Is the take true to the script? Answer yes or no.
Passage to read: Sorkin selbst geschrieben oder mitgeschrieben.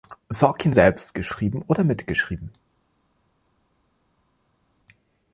yes